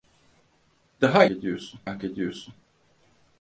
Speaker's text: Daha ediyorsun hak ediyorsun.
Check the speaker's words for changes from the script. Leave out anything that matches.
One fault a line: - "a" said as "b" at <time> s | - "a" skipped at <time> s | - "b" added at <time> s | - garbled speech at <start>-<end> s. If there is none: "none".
none